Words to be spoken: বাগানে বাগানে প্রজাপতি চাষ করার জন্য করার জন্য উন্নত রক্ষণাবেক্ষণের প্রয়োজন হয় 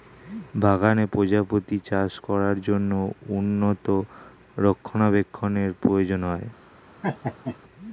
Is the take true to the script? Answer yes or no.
no